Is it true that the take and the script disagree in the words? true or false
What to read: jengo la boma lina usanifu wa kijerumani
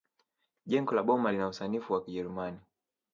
false